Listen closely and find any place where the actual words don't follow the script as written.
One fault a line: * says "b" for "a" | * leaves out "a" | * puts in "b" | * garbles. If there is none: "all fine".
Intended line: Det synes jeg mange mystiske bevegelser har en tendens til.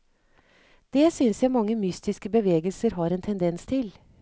all fine